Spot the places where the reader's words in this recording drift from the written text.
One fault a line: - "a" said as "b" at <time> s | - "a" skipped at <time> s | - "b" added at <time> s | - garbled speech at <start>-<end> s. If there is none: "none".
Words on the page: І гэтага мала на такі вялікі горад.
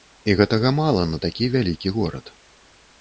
none